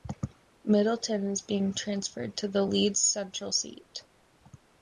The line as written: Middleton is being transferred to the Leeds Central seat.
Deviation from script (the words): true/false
false